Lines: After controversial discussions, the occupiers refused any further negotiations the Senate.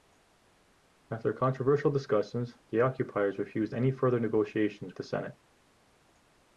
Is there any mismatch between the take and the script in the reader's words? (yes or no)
no